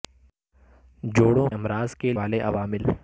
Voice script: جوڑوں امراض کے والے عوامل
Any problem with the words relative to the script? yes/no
no